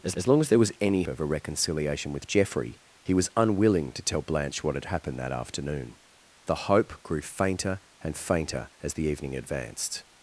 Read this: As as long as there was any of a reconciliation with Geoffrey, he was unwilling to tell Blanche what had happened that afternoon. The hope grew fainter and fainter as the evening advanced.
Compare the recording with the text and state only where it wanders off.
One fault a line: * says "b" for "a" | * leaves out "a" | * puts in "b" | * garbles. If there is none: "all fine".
all fine